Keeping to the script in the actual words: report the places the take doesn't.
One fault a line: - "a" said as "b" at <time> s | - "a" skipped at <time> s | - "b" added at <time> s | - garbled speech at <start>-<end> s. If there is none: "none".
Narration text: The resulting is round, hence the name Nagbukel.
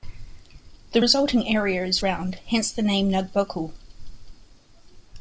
- "area" added at 1.5 s